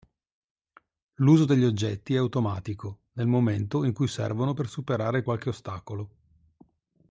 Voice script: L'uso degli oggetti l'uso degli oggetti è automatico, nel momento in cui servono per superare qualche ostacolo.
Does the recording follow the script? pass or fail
fail